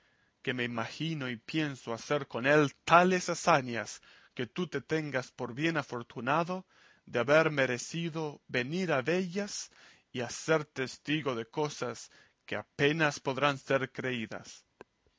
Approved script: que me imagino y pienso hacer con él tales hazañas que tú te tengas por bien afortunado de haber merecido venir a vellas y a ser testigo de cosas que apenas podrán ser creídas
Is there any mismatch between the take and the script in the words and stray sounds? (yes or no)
no